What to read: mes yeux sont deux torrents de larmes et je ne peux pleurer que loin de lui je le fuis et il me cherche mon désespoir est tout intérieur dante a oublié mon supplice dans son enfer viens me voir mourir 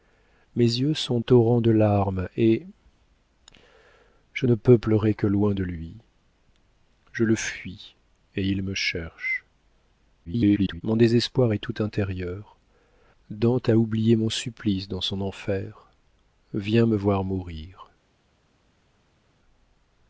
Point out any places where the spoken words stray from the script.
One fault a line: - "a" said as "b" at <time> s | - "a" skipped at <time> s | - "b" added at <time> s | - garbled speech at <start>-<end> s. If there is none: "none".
- "deux" skipped at 1.2 s
- garbled speech at 10.2-10.8 s